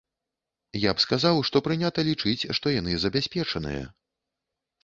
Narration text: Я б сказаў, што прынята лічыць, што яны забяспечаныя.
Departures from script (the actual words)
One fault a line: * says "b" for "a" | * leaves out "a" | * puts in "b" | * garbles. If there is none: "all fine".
all fine